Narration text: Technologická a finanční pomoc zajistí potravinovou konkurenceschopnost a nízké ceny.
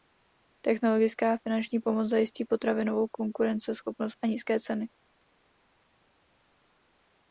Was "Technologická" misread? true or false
false